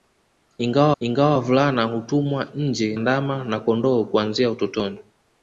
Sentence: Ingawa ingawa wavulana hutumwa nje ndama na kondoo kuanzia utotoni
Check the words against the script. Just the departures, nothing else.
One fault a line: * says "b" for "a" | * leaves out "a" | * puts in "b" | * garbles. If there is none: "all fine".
all fine